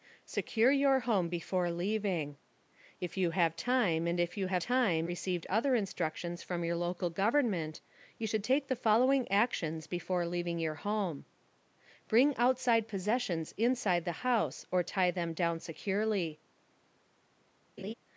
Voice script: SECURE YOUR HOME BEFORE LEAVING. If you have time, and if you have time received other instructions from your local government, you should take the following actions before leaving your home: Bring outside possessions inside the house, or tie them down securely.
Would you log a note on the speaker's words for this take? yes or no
no